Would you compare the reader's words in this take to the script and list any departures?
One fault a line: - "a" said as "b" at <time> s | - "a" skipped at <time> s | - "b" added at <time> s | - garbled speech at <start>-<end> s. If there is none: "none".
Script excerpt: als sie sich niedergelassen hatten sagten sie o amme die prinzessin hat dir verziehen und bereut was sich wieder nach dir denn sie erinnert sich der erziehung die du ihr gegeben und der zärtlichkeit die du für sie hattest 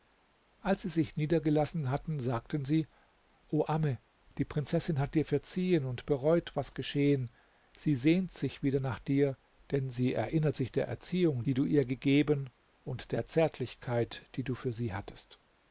- "geschehen sie sehnt" added at 6.7 s